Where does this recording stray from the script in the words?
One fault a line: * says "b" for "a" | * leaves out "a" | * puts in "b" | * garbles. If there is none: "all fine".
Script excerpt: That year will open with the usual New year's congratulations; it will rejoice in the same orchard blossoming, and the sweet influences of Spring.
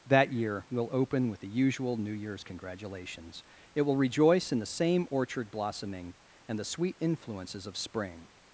all fine